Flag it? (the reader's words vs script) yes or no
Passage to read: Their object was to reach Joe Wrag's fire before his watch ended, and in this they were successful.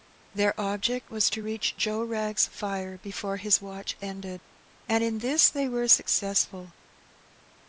no